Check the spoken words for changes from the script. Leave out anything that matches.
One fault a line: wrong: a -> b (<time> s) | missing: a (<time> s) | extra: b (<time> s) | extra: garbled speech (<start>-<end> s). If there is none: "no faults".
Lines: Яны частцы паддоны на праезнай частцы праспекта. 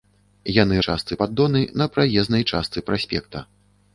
no faults